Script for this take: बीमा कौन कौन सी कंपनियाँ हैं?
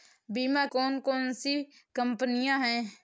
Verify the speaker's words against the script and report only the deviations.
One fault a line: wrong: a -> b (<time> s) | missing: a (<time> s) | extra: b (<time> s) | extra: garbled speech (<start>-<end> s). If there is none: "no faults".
no faults